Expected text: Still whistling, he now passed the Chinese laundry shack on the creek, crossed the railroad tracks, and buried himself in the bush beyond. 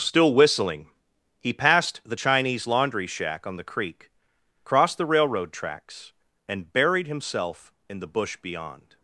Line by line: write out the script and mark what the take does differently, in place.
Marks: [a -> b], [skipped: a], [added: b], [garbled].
Still whistling, he [skipped: now] passed the Chinese laundry shack on the creek, crossed the railroad tracks, and buried himself in the bush beyond.